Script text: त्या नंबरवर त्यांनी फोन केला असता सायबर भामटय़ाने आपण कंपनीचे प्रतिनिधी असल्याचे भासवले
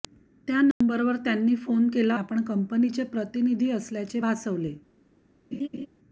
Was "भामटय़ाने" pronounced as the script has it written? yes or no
no